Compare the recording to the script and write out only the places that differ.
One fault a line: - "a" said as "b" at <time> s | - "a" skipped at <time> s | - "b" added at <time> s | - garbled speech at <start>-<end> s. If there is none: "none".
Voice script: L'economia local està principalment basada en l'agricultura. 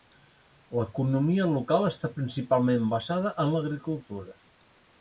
none